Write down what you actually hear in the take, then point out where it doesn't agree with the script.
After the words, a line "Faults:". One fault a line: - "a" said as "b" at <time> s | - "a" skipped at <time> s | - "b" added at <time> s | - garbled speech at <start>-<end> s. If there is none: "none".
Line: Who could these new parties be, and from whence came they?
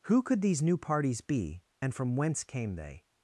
Who could these new parties be, and from whence came they?
Faults:
none